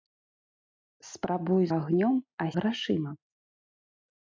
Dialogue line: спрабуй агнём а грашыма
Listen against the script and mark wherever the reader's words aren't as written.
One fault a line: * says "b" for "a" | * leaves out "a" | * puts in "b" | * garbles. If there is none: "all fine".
all fine